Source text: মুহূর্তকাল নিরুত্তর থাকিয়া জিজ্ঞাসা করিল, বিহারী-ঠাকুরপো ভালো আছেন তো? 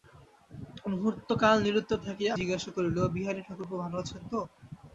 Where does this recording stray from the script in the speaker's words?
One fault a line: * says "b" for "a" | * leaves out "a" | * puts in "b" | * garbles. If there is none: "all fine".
all fine